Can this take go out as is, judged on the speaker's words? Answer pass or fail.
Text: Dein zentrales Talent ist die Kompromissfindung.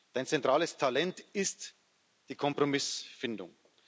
pass